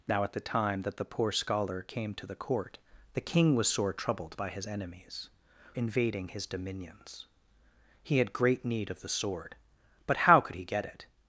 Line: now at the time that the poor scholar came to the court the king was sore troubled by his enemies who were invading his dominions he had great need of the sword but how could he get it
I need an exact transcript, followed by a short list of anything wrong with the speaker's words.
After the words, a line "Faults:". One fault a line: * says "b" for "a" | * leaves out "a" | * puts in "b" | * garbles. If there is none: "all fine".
now at the time that the poor scholar came to the court the king was sore troubled by his enemies invading his dominions he had great need of the sword but how could he get it
Faults:
* leaves out "who were"